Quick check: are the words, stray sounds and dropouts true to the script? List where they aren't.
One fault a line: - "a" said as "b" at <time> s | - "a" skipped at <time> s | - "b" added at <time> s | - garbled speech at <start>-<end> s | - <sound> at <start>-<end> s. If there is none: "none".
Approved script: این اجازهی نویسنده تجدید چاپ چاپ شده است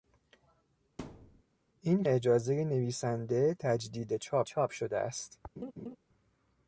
- thud at 1.0-1.4 s
- laugh at 5.6-6.0 s